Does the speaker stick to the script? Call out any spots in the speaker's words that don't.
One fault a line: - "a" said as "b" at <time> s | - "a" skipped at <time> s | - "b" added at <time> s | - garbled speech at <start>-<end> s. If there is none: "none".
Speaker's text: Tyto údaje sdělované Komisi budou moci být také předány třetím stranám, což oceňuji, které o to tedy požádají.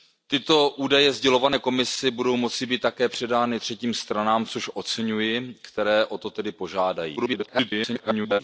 - garbled speech at 7.2-8.4 s